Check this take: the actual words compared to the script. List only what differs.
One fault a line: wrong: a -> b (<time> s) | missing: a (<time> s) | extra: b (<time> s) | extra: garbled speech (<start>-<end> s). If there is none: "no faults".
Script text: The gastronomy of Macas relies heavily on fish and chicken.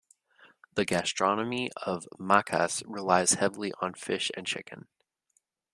no faults